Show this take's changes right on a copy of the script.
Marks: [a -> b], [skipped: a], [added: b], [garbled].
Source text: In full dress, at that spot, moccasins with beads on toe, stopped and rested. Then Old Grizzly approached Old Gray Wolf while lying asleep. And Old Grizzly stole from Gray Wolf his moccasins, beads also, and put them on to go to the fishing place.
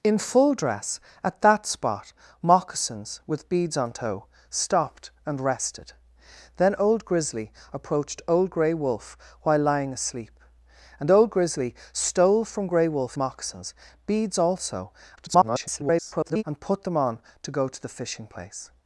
In full dress, at that spot, moccasins with beads on toe, stopped and rested. Then Old Grizzly approached Old Gray Wolf while lying asleep. And Old Grizzly stole from Gray Wolf [skipped: his] moccasins, beads also, [garbled] and put them on to go to the fishing place.